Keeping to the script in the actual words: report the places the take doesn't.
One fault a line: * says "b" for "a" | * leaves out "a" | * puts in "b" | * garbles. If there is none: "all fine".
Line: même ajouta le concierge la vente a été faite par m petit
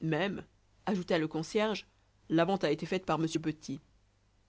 all fine